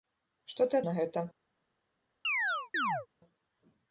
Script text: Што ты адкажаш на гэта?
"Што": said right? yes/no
yes